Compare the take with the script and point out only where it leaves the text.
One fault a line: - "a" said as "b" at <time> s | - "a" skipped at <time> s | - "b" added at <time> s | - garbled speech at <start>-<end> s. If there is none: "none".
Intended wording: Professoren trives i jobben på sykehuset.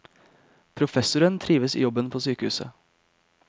none